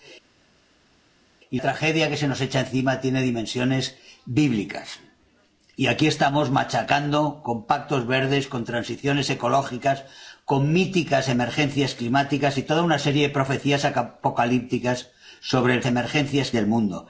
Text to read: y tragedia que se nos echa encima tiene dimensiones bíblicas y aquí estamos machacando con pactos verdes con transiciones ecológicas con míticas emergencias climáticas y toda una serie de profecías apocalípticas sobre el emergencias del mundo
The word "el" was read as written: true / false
true